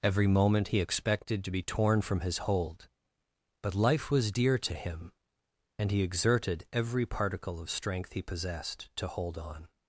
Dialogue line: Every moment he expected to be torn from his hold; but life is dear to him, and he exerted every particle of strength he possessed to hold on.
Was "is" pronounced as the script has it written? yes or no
no